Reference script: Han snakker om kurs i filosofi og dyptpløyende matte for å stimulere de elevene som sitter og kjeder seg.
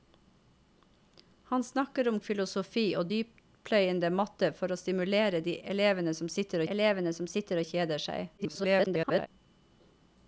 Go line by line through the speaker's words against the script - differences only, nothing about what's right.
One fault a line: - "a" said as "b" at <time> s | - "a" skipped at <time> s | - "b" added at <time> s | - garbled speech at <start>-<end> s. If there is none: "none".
- "kurs i" skipped at 2.2 s
- "elevene som sitter" added at 6.7 s
- garbled speech at 8.4-9.3 s